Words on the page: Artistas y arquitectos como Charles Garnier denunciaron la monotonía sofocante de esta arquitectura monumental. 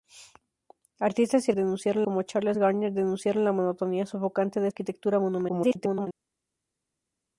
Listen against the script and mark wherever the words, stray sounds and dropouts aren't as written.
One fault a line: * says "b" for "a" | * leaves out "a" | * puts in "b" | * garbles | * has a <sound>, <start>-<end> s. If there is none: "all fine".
* says "denunciaron" for "arquitectos"
* leaves out "esta"
* garbles